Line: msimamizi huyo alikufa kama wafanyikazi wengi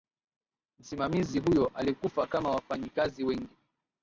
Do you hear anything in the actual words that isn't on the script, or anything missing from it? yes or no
no